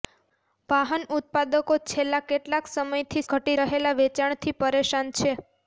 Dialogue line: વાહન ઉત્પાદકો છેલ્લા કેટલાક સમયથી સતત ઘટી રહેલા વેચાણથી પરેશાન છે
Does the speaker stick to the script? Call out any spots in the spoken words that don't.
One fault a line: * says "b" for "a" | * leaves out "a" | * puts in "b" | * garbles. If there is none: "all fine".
* leaves out "સતત"